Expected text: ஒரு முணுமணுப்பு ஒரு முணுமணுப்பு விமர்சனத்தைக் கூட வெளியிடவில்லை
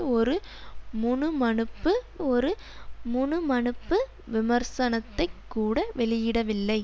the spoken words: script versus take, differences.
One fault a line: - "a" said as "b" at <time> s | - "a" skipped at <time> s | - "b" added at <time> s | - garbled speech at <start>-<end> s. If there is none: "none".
none